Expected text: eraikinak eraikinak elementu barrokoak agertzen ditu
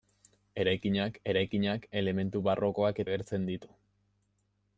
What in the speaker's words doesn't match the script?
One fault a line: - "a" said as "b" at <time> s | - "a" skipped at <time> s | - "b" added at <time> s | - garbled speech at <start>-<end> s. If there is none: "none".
none